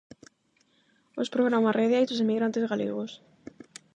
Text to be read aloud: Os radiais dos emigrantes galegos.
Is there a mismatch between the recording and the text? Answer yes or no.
yes